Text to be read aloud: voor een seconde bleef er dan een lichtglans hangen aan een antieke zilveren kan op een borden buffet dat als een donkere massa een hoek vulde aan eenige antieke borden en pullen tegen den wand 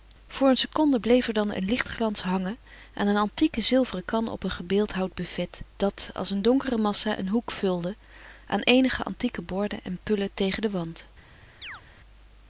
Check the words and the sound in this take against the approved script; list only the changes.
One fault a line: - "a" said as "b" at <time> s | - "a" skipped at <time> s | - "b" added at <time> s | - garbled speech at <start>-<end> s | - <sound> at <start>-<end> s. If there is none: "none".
- "borden" said as "gebeeldhouwd" at 4.5 s
- chirp at 11.6-11.8 s